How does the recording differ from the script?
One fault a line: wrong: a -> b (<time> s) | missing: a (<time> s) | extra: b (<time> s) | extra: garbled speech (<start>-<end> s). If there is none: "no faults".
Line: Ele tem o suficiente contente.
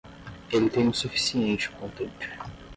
no faults